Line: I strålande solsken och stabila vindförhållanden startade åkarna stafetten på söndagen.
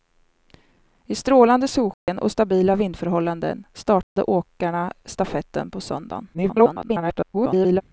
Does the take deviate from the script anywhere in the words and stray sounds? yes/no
yes